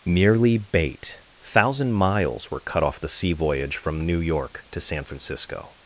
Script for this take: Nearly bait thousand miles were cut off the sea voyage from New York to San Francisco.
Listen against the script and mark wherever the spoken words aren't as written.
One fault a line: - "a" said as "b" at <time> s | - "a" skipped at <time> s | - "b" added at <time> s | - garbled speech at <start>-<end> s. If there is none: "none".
none